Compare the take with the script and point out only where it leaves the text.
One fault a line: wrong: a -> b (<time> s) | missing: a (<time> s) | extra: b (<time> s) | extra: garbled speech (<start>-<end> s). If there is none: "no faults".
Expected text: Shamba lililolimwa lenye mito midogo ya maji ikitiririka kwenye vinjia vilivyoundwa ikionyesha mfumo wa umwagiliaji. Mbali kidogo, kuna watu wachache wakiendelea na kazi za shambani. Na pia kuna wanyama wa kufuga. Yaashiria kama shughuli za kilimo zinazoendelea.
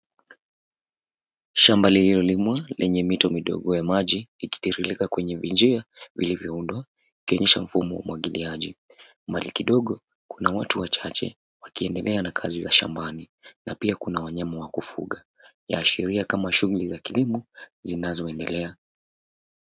no faults